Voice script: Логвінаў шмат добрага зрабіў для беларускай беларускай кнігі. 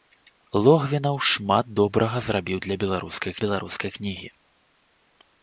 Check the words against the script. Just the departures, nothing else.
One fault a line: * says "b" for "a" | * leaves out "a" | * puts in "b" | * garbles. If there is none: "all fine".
all fine